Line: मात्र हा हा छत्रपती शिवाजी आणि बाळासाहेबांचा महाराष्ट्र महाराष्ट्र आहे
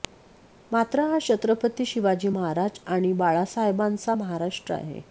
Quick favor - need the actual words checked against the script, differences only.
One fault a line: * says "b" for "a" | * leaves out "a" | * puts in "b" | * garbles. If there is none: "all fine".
* leaves out "हा"
* puts in "महाराज"
* leaves out "महाराष्ट्र"